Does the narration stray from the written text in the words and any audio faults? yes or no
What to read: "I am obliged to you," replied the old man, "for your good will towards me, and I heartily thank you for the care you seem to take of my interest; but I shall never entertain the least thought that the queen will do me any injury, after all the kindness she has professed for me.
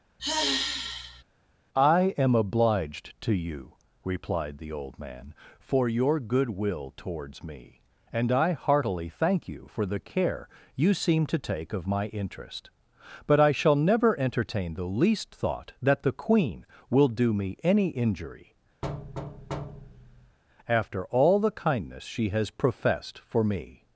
yes